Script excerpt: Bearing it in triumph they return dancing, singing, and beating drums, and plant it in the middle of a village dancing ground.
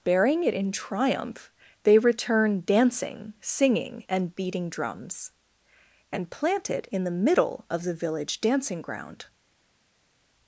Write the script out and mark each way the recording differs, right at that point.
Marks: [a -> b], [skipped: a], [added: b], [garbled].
Bearing it in triumph they return dancing, singing, and beating drums, and plant it in the middle of [a -> the] village dancing ground.